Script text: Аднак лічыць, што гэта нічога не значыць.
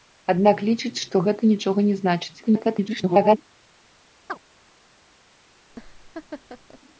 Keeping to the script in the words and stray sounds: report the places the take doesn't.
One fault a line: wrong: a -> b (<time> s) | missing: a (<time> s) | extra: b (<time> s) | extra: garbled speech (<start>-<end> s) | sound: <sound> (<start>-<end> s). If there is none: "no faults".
extra: garbled speech (2.4-3.4 s)
sound: chirp (4.3-4.4 s)
sound: laugh (5.7-6.8 s)